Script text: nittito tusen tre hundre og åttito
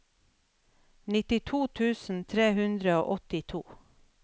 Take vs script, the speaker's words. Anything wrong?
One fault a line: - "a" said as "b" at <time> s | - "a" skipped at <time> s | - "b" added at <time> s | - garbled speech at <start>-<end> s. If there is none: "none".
none